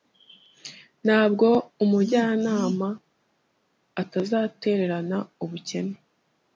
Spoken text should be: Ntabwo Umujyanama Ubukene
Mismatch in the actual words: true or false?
true